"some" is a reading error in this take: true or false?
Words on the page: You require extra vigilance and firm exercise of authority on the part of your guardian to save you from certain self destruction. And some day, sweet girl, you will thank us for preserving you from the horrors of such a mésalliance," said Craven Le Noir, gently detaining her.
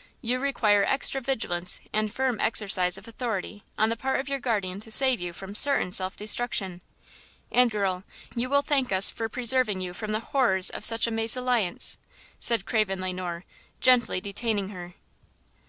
true